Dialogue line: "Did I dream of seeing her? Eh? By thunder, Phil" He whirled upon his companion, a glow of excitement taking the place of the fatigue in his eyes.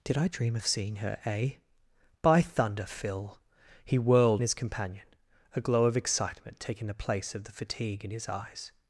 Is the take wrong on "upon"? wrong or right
wrong